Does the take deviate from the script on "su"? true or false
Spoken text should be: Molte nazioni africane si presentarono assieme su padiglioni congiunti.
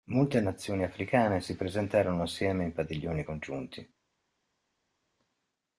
true